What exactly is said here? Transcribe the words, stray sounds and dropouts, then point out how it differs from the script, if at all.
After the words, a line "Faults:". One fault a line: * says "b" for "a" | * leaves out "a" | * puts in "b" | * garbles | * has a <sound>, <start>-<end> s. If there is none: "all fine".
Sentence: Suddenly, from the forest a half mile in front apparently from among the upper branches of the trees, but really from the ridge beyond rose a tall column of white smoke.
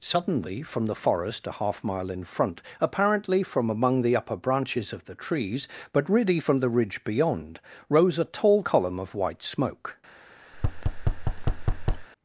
Suddenly, from the forest a half mile in front apparently from among the upper branches of the trees, but really from the ridge beyond rose a tall column of white smoke.
Faults:
* has a thud, 10.5-12.1 s